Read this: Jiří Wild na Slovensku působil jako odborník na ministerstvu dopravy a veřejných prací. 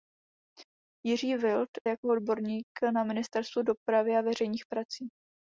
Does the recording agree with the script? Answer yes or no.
no